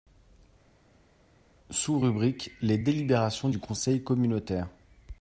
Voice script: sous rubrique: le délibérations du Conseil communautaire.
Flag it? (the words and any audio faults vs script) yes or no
yes